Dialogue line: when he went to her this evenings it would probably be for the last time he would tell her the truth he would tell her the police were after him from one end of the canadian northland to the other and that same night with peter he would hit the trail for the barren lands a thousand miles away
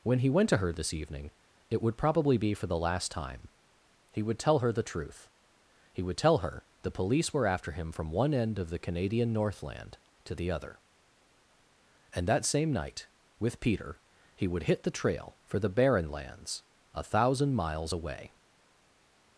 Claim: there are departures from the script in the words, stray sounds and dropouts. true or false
true